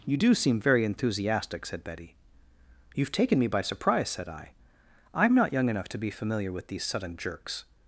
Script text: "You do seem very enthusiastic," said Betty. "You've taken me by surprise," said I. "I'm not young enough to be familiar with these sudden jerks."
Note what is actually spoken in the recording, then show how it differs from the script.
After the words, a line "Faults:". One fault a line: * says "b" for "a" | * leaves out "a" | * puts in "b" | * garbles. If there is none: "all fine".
"You do seem very enthusiastic," said Betty. "You've taken me by surprise," said I. "I'm not young enough to be familiar with these sudden jerks."
Faults:
all fine